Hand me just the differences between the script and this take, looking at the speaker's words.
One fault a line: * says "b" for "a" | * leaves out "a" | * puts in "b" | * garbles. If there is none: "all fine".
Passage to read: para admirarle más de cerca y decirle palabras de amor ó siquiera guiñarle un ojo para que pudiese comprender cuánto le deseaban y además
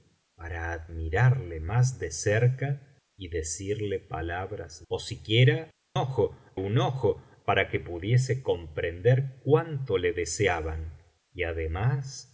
* leaves out "de amor"
* says "ojo" for "guiñarle"